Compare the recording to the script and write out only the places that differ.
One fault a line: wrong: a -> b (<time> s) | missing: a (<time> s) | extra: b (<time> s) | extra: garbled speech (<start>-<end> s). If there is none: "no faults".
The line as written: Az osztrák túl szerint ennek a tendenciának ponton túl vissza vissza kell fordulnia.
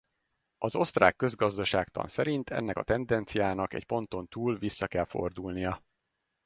wrong: túl -> közgazdaságtan (1.1 s)
extra: egy (3.7 s)
missing: vissza (4.9 s)